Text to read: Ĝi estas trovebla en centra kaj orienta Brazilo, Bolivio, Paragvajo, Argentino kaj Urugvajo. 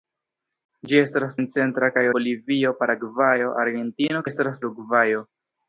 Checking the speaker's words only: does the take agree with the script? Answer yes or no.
no